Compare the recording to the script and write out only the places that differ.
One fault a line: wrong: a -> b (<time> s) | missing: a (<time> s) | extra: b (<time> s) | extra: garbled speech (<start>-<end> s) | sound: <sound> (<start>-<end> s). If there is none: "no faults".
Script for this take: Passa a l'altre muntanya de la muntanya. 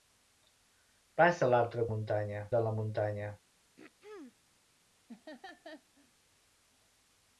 sound: throat clearing (3.8-4.4 s)
sound: laugh (5.1-6.1 s)